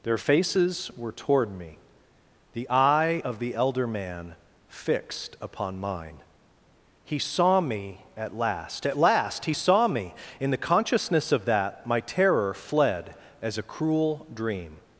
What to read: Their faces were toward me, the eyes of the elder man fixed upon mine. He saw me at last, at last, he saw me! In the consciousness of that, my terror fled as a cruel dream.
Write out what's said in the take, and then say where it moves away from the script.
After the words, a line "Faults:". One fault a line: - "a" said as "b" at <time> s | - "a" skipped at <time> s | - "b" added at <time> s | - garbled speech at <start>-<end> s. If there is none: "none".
Their faces were toward me, the eye of the elder man fixed upon mine. He saw me at last, at last, he saw me! In the consciousness of that, my terror fled as a cruel dream.
Faults:
- "eyes" said as "eye" at 2.7 s